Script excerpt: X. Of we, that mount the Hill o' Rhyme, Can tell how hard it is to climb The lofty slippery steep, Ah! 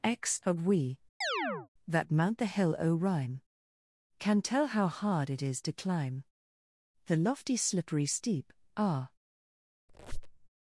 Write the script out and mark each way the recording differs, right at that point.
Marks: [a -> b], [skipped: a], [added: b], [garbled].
X. Of we, that mount the Hill o' Rhyme, Can tell how hard it is to climb The lofty slippery steep, Ah!